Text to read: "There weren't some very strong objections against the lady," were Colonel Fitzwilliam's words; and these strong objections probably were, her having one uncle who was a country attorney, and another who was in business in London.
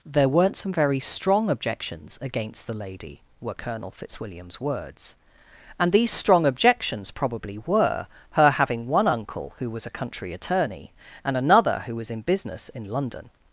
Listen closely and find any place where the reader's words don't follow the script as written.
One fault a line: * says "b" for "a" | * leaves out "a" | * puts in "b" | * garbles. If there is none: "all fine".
all fine